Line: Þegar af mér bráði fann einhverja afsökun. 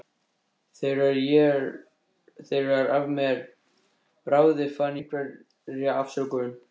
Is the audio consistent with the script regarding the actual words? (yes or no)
yes